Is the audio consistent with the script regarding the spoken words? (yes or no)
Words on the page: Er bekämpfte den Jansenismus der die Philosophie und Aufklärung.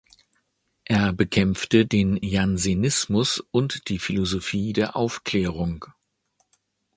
no